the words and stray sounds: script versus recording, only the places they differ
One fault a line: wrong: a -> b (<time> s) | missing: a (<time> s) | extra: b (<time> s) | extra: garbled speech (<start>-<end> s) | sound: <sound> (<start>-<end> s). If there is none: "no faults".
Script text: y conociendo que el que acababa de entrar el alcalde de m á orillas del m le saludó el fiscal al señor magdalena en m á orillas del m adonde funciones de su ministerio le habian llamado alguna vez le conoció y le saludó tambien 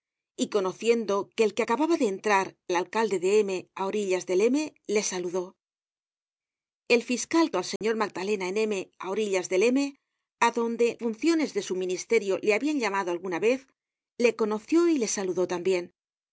sound: dropout (7.8-7.8 s)